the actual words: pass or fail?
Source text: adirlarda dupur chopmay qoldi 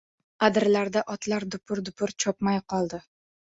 fail